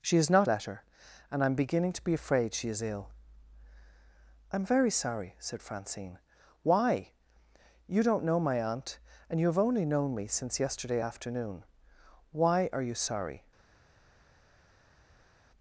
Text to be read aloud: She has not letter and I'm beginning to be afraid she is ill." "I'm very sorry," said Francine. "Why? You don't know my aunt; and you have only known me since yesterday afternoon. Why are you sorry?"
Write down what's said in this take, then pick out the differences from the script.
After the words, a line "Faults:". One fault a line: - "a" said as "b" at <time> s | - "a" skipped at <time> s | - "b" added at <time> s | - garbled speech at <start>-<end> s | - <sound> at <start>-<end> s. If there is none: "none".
She has not letter and I'm beginning to be afraid she is ill." "I'm very sorry," said Francine. "Why? You don't know my aunt; and you have only known me since yesterday afternoon. Why are you sorry?"
Faults:
none